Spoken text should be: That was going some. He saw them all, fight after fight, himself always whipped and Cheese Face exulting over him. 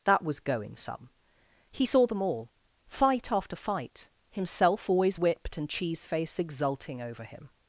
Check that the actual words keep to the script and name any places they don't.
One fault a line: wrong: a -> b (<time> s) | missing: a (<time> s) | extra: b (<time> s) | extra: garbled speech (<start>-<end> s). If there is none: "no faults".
no faults